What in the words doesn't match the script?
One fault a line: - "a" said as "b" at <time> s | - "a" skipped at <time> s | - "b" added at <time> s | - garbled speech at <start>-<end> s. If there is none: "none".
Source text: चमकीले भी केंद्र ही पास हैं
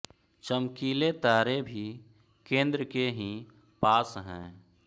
- "तारे" added at 1.1 s
- "के" added at 2.8 s